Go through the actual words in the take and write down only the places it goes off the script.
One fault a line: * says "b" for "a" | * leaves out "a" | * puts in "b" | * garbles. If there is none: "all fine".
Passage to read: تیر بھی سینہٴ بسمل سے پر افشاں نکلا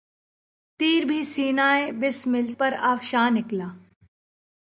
* leaves out "سے"